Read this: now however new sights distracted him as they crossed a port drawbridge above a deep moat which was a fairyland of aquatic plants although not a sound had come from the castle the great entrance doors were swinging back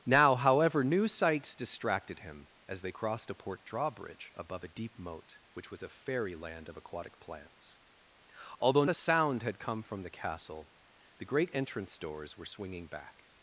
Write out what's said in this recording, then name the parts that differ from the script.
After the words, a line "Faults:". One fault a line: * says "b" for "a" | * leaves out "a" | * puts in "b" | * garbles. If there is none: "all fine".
now however new sights distracted him as they crossed a port drawbridge above a deep moat which was a fairyland of aquatic plants although a sound had come from the castle the great entrance doors were swinging back
Faults:
* leaves out "not"